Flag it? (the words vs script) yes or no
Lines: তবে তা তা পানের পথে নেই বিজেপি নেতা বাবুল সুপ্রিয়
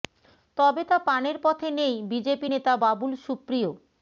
yes